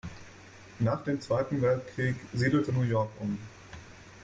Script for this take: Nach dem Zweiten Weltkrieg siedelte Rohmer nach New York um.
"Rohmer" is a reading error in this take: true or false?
true